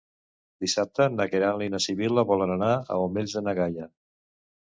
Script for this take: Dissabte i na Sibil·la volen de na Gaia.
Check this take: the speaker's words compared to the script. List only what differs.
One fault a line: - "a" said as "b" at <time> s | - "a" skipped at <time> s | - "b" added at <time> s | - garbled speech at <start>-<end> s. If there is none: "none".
- "na Queralt" added at 1.2 s
- "anar als Omells" added at 2.5 s